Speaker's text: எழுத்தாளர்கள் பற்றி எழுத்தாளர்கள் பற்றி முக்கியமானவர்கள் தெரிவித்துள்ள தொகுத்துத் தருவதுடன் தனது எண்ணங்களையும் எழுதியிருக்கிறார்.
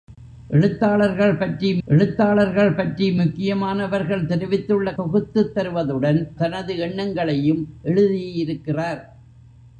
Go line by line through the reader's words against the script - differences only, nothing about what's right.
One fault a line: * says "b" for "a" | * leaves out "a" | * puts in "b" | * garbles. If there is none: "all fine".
all fine